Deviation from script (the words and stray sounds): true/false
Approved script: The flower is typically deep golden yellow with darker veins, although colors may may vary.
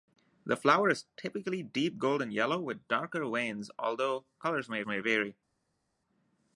false